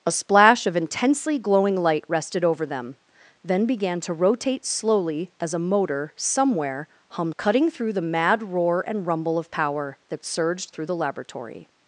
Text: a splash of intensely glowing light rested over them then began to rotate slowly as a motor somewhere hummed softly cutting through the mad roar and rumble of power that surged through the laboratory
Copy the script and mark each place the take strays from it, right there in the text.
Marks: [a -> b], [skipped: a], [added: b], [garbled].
a splash of intensely glowing light rested over them then began to rotate slowly as a motor somewhere hummed [skipped: softly] cutting through the mad roar and rumble of power that surged through the laboratory